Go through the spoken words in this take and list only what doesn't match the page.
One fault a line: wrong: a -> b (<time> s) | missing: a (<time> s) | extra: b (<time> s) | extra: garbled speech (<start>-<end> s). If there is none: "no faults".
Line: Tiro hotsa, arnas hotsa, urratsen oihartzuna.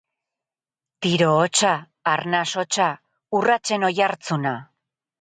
no faults